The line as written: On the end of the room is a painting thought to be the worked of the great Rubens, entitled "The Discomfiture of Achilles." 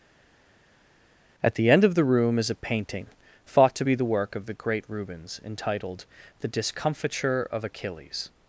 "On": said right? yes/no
no